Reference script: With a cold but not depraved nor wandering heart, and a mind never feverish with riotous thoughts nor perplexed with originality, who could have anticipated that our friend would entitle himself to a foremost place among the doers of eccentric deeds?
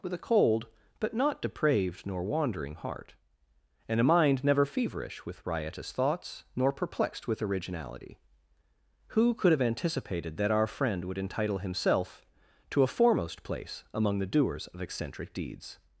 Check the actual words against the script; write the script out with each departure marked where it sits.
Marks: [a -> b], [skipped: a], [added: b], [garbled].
With a cold but not depraved nor wandering heart, and a mind never feverish with riotous thoughts nor perplexed with originality, who could have anticipated that our friend would entitle himself to a foremost place among the doers of eccentric deeds?